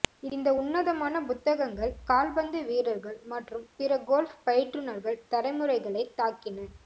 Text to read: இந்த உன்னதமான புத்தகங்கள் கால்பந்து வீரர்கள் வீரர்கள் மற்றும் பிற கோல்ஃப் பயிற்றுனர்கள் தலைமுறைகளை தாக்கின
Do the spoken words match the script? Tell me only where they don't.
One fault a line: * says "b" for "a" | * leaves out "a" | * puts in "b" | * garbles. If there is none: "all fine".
* leaves out "வீரர்கள்"